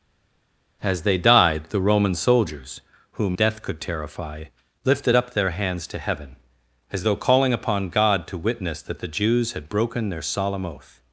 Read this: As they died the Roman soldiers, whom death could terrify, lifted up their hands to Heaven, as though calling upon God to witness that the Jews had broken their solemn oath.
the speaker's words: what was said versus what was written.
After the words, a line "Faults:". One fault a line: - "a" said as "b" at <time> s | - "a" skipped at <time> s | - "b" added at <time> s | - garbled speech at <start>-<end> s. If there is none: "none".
As they died the Roman soldiers, whom death could terrify, lifted up their hands to Heaven, as though calling upon God to witness that the Jews had broken their solemn oath.
Faults:
none